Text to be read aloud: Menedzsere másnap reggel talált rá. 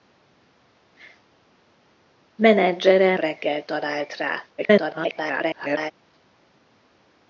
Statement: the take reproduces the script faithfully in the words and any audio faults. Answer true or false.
false